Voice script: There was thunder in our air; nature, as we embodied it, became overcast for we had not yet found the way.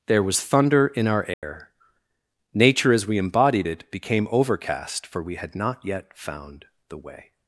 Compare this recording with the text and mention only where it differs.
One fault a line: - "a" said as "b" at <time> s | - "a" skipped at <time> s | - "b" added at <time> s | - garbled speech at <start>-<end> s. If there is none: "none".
none